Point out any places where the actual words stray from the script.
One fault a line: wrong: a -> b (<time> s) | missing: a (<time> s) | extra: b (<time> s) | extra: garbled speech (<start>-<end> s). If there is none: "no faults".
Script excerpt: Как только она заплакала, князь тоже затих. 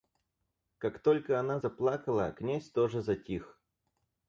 no faults